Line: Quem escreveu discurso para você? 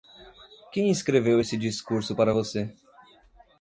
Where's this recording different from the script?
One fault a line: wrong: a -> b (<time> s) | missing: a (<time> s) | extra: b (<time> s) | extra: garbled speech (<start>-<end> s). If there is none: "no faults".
extra: esse (1.4 s)